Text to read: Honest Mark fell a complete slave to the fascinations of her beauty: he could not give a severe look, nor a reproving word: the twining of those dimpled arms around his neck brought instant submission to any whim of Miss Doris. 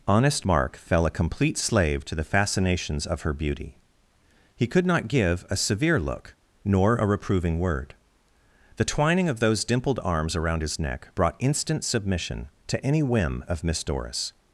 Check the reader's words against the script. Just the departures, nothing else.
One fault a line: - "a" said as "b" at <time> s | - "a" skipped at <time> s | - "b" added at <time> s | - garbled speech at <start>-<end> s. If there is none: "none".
none